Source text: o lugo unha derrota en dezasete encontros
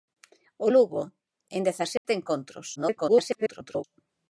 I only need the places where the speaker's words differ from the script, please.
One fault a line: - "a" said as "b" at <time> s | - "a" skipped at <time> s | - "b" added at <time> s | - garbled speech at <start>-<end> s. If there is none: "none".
- "unha derrota" skipped at 1.0 s
- garbled speech at 2.8-3.8 s